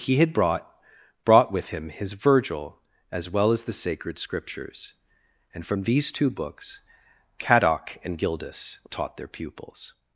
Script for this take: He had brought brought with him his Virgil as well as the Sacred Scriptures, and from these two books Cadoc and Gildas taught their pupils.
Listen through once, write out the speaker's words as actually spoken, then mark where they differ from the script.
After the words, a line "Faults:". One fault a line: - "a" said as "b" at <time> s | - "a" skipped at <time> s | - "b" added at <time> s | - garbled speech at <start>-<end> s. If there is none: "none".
He had brought brought with him his Virgil as well as the Sacred Scriptures, and from these two books Cadoc and Gildas taught their pupils.
Faults:
none